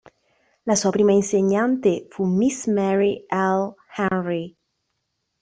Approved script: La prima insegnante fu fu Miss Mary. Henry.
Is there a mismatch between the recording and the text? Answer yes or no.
yes